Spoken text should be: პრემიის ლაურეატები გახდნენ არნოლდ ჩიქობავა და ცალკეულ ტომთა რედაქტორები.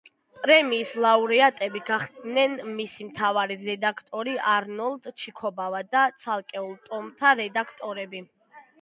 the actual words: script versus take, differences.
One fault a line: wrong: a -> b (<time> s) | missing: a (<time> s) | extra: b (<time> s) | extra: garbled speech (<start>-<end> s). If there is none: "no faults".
extra: მისი მთავარი რედაქტორი (2.8 s)